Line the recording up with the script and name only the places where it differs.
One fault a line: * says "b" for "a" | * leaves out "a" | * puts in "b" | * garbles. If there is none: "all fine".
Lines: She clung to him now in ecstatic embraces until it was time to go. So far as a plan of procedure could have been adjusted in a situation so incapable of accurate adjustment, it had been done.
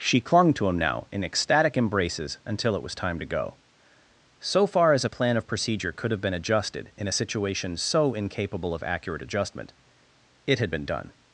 all fine